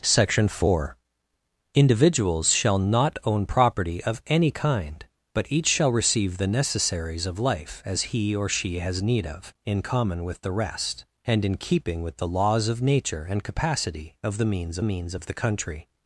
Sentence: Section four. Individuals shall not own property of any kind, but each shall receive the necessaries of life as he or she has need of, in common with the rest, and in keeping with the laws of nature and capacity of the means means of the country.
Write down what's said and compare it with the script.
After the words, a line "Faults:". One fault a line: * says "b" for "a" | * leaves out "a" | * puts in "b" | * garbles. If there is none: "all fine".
Section four. Individuals shall not own property of any kind, but each shall receive the necessaries of life as he or she has need of, in common with the rest, and in keeping with the laws of nature and capacity of the means means of the country.
Faults:
all fine